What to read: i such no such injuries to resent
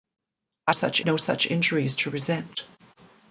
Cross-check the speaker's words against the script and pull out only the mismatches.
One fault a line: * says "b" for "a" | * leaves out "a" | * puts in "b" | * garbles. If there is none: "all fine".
all fine